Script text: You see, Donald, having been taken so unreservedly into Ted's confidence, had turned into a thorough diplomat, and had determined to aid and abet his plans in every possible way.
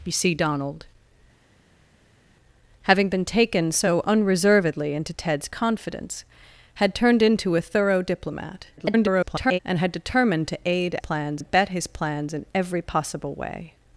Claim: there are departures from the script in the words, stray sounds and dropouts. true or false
true